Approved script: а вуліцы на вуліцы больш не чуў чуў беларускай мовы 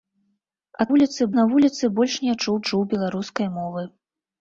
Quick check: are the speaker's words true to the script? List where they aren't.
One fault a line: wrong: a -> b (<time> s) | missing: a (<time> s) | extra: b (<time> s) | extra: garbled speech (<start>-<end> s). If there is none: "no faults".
no faults